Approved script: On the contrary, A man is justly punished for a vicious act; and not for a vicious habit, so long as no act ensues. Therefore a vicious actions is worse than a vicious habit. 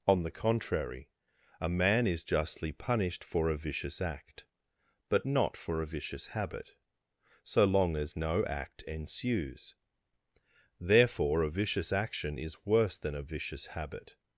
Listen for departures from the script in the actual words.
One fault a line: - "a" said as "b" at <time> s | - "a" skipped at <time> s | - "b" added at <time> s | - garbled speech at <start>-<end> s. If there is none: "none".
- "and" said as "but" at 5.1 s
- "actions" said as "action" at 11.9 s